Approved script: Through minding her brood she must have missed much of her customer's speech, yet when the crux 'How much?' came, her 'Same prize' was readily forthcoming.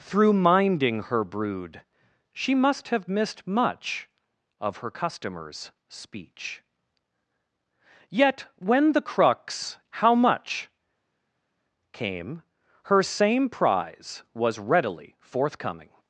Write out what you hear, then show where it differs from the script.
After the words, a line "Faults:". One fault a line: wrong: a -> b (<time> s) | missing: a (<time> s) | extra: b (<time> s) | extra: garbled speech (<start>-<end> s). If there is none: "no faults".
Through minding her brood she must have missed much of her customer's speech, yet when the crux 'How much?' came, her 'Same prize' was readily forthcoming.
Faults:
no faults